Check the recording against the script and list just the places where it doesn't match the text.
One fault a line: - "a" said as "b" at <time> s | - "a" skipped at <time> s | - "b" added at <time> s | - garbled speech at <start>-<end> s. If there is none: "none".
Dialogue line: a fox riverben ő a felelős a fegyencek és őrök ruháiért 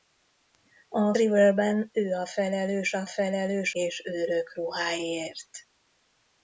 - "fox" skipped at 1.1 s
- "fegyencek" said as "felelős" at 3.1 s